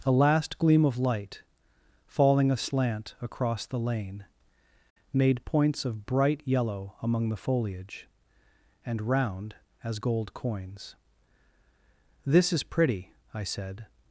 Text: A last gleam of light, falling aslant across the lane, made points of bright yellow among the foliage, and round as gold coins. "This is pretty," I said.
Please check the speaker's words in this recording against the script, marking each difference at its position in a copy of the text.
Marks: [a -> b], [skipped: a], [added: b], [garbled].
A last gleam of light, falling aslant across the lane, made points of bright yellow among the foliage, and round as gold coins. "This is pretty," I said.